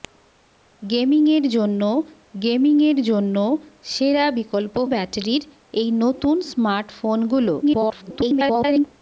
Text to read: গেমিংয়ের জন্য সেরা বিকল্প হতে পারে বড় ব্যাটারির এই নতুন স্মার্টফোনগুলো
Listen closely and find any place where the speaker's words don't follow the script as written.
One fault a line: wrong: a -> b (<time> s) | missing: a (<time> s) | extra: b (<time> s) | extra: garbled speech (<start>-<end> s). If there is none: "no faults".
extra: গেমিংয়ের জন্য (2.3 s)
missing: হতে পারে বড় (4.8 s)
extra: garbled speech (7.6-8.9 s)